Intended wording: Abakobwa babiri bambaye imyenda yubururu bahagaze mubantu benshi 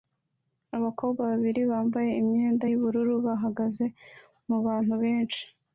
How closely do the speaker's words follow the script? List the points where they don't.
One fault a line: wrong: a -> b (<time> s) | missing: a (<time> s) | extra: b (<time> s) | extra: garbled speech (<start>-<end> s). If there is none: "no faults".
no faults